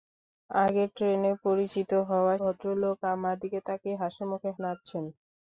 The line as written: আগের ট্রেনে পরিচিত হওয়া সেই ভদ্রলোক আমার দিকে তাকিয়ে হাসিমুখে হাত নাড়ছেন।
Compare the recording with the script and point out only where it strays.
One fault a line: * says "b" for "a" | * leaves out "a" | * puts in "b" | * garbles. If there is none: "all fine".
* leaves out "সেই"
* leaves out "হাত"